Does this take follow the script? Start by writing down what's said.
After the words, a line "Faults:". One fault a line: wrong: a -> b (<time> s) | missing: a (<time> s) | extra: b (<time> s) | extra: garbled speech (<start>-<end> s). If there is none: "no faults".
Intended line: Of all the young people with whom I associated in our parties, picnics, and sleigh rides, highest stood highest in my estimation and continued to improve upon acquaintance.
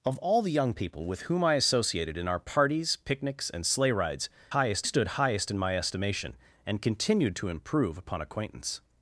Of all the young people with whom I associated in our parties, picnics, and sleigh rides, highest stood highest in my estimation and continued to improve upon acquaintance.
Faults:
no faults